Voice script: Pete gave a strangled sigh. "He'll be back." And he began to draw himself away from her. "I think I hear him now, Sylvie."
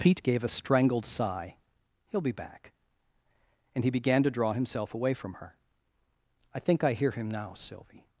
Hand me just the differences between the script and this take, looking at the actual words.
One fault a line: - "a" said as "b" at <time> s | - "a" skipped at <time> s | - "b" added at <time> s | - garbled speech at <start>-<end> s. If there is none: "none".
none